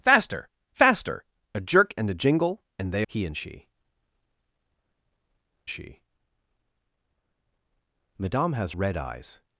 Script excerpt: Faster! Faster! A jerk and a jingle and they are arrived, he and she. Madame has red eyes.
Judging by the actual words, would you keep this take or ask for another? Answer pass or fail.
fail